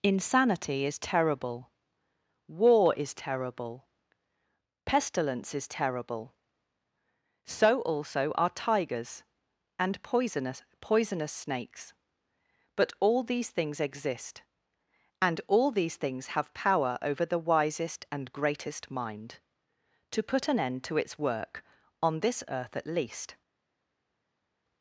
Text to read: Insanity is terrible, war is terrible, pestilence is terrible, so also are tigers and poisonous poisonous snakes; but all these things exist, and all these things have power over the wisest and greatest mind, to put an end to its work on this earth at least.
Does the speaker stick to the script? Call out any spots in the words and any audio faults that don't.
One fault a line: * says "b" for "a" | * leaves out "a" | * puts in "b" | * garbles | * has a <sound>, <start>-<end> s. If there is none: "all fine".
all fine